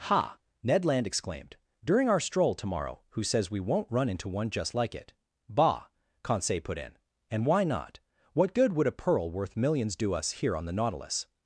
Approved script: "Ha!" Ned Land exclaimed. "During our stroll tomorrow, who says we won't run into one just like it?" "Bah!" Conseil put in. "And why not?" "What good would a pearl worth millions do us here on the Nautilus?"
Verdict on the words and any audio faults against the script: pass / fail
pass